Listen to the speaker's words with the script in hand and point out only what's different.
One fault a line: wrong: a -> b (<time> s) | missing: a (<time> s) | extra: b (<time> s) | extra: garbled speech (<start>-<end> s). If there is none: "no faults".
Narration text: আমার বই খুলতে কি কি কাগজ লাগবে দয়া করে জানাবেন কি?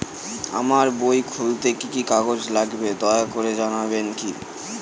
no faults